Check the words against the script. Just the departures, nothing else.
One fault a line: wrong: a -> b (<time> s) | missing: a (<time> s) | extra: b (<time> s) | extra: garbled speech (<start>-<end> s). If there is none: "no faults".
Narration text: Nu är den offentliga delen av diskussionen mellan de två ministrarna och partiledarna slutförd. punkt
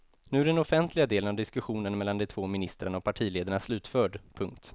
no faults